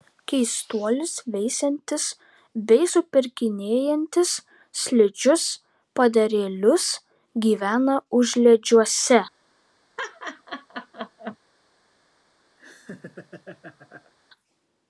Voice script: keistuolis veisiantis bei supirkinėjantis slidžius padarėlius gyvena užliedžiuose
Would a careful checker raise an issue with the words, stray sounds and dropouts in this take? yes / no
yes